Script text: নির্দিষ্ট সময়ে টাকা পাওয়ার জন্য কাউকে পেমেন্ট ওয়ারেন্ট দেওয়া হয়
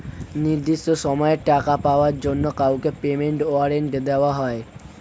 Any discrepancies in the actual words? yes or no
no